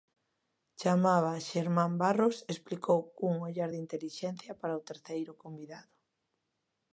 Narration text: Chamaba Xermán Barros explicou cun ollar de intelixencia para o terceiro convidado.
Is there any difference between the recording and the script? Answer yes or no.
no